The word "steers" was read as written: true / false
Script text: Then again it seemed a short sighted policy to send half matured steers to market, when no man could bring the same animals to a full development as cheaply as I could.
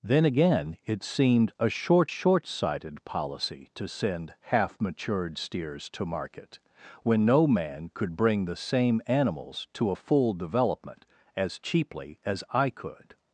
true